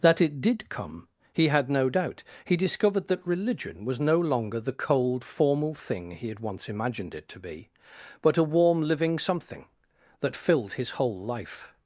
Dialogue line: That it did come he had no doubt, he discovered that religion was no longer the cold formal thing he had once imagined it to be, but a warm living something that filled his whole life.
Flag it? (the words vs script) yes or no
no